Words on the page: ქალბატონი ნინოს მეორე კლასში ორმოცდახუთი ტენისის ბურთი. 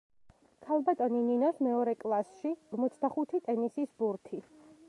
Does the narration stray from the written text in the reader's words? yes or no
no